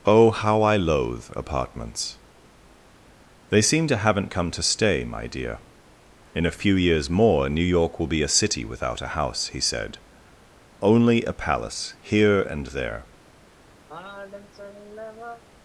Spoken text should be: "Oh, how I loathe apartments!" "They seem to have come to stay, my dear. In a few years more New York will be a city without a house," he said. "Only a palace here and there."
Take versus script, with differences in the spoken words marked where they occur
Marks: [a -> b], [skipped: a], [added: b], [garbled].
"Oh, how I loathe apartments!" "They seem to [have -> haven't] come to stay, my dear. In a few years more New York will be a city without a house," he said. "Only a palace here and there."